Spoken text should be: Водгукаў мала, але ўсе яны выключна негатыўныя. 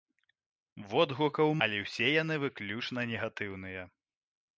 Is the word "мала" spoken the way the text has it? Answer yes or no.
no